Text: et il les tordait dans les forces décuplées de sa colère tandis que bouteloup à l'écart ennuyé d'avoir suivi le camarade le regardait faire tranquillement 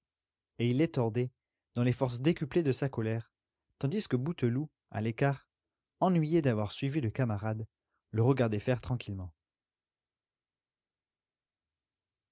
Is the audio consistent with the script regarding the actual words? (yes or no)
yes